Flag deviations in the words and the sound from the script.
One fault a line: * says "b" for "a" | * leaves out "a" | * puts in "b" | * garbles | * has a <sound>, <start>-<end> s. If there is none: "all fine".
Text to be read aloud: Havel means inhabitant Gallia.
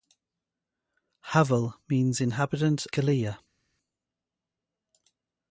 all fine